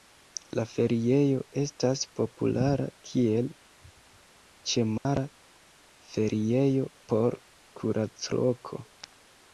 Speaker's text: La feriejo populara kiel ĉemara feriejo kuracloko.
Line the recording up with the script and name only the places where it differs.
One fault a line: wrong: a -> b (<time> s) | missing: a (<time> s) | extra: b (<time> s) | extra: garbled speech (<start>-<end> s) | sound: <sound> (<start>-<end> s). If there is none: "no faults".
extra: estas (1.6 s)
sound: dropout (5.0-5.1 s)
extra: por (7.1 s)